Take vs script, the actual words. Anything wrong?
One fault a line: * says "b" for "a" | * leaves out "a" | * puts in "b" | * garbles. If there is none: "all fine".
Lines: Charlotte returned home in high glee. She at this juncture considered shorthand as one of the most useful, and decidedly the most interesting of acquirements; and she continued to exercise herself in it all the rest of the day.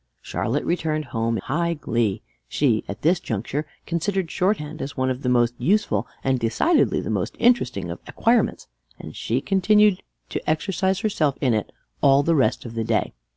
* leaves out "in"